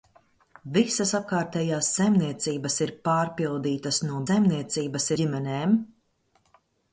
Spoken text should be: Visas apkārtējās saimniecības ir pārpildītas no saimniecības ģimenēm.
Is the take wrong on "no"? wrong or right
right